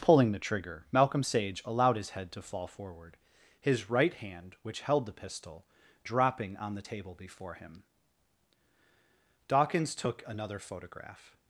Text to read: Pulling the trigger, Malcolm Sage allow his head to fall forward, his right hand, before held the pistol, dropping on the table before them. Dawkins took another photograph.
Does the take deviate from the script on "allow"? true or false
true